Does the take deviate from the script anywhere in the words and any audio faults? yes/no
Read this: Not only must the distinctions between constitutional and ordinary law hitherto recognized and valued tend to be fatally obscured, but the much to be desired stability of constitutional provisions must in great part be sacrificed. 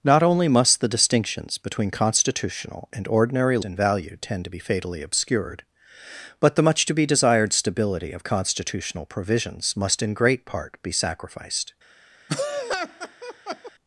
yes